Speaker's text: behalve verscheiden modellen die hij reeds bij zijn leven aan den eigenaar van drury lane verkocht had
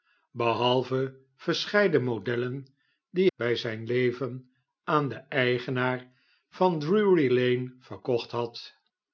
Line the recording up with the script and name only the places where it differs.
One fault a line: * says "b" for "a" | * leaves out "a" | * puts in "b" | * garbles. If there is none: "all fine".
* leaves out "hij reeds"